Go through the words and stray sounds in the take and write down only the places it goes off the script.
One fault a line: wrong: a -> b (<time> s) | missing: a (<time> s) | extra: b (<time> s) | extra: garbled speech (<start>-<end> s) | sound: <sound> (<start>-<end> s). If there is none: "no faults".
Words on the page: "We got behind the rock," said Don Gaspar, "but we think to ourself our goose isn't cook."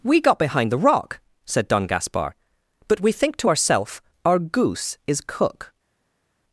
wrong: isn't -> is (5.1 s)